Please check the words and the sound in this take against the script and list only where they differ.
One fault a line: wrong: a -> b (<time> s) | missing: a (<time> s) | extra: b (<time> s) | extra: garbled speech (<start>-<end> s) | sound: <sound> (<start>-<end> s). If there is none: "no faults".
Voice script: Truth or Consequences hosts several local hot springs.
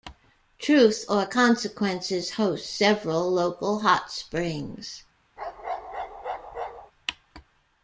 sound: bark (5.4-6.9 s)